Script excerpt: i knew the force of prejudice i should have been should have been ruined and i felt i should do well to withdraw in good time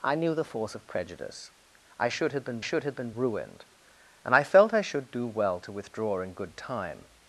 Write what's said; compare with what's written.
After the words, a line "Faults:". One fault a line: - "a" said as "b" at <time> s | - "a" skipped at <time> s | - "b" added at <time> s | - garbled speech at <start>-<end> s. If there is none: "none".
i knew the force of prejudice i should have been should have been ruined and i felt i should do well to withdraw in good time
Faults:
none